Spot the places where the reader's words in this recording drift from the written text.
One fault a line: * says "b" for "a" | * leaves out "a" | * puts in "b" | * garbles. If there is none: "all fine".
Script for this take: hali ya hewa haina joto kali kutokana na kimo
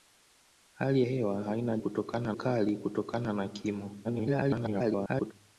* leaves out "ya"
* says "kutokana" for "joto"
* garbles